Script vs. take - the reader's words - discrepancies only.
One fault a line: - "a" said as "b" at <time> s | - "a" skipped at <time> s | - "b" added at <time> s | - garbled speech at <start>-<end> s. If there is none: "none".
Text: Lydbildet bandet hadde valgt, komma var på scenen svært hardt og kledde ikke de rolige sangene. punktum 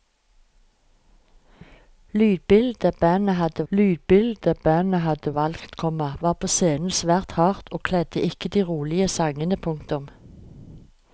- "lydbildet bandet hadde" added at 3.7 s